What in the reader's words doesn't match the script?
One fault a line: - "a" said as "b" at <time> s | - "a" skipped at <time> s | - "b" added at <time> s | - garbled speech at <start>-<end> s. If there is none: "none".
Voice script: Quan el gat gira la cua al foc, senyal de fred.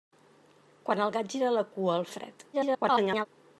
- "foc senyal" skipped at 2.1 s
- garbled speech at 2.5-3.3 s